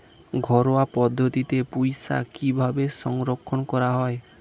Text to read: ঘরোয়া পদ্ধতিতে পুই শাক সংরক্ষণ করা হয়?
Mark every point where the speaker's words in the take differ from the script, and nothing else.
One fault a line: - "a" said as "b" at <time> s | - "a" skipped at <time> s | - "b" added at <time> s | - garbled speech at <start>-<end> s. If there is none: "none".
- "কিভাবে" added at 2.3 s